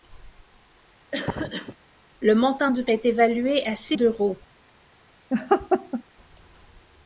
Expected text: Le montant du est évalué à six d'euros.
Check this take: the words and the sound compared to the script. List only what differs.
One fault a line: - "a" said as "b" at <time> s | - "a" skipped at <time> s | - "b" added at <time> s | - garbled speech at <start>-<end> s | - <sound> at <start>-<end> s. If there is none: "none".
- cough at 1.1-1.8 s
- laugh at 5.3-6.0 s